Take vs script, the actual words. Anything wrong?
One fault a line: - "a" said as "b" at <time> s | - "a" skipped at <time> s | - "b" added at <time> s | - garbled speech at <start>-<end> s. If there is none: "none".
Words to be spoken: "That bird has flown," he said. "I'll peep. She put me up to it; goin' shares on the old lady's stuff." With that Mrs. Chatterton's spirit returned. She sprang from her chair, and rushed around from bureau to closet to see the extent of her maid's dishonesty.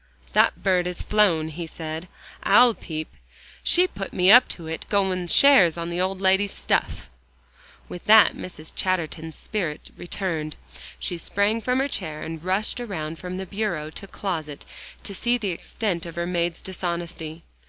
none